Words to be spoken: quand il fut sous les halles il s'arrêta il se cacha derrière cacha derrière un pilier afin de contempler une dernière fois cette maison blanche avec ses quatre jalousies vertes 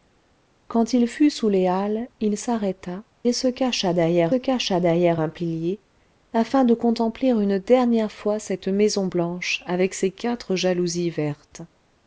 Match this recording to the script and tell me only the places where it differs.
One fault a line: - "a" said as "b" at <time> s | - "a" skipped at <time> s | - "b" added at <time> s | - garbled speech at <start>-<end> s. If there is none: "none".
none